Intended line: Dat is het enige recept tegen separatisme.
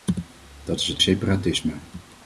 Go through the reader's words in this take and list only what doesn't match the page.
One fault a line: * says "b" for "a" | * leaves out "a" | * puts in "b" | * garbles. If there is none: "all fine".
* leaves out "enige recept tegen"